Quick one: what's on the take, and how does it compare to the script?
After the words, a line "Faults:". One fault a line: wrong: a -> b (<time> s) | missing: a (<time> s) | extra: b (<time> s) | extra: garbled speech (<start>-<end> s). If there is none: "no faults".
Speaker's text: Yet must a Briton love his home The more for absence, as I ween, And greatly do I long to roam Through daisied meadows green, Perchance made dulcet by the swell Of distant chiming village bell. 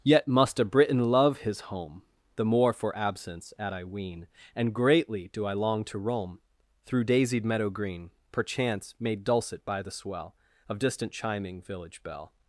Yet must a Briton love his home The more for absence, at I ween, And greatly do I long to roam Through daisied meadow green, Perchance made dulcet by the swell Of distant chiming village bell.
Faults:
wrong: as -> at (3.6 s)
wrong: meadows -> meadow (7.4 s)